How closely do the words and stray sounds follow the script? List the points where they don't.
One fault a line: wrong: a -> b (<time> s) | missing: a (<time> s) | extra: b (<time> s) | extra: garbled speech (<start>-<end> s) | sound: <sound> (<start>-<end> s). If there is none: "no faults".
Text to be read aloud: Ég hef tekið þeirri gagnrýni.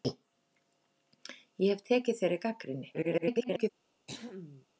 extra: garbled speech (2.9-3.7 s)
sound: throat clearing (4.1-4.7 s)